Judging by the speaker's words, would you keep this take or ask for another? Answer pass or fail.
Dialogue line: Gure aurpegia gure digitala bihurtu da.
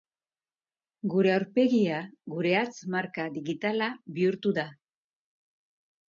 fail